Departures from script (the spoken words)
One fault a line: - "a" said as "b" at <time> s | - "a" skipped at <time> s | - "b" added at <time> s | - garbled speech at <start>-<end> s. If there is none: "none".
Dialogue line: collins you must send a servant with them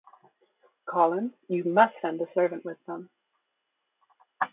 none